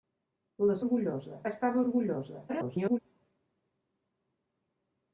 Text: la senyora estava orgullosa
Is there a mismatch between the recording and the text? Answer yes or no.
yes